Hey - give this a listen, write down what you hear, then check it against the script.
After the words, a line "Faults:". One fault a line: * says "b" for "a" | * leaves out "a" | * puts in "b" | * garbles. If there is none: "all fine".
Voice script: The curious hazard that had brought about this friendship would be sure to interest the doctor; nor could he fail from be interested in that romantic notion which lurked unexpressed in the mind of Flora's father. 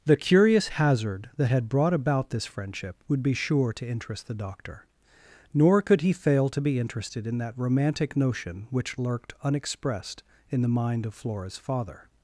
The curious hazard that had brought about this friendship would be sure to interest the doctor; nor could he fail to be interested in that romantic notion which lurked unexpressed in the mind of Flora's father.
Faults:
* says "to" for "from"